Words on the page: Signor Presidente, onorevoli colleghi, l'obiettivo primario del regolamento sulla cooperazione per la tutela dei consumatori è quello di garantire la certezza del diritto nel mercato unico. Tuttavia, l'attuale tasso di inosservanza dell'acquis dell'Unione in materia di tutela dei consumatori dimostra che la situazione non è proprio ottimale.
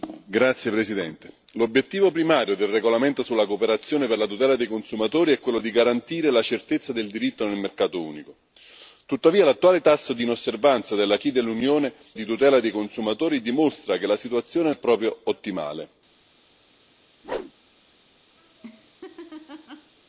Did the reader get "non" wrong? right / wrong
wrong